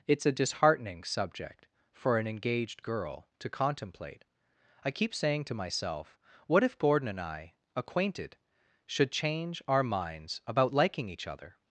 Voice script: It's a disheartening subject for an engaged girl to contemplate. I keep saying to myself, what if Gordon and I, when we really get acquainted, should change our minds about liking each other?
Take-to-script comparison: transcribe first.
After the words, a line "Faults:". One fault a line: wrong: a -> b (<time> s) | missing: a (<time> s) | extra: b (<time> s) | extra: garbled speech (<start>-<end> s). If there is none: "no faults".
It's a disheartening subject for an engaged girl to contemplate. I keep saying to myself, what if Gordon and I, acquainted, should change our minds about liking each other?
Faults:
missing: when we really get (7.5 s)